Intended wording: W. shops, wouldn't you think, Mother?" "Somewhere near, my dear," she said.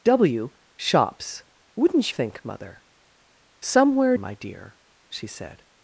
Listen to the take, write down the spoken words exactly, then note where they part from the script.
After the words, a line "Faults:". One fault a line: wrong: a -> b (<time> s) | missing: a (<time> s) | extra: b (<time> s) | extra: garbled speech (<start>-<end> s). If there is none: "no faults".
W. shops, wouldn't think, Mother?" "Somewhere my dear," she said.
Faults:
missing: you (2.1 s)
missing: near (4.2 s)